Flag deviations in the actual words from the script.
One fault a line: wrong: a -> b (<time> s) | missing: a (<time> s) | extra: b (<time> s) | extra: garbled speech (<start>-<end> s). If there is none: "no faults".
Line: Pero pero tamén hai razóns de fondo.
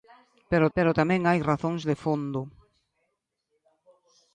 no faults